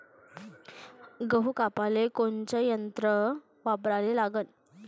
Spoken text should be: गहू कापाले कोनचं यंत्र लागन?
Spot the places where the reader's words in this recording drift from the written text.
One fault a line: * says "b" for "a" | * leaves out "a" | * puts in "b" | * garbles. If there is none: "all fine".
* puts in "वापराले"